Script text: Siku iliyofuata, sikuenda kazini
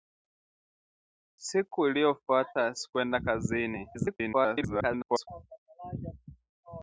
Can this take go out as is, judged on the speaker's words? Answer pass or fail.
fail